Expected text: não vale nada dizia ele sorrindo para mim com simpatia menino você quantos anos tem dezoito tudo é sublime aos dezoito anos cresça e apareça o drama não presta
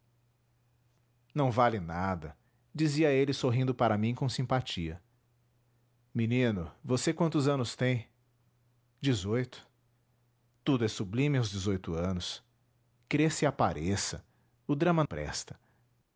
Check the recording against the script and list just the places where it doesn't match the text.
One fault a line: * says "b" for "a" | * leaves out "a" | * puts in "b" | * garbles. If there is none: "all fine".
* leaves out "não"